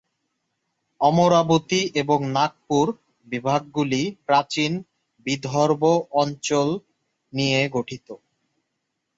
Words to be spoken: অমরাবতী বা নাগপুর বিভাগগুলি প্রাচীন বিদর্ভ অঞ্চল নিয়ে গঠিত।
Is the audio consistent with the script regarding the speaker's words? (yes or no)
no